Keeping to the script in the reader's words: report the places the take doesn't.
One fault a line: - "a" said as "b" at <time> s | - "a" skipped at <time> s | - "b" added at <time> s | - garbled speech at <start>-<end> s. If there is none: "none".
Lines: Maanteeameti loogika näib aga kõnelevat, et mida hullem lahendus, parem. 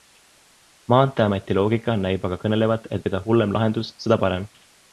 - "seda" added at 4.0 s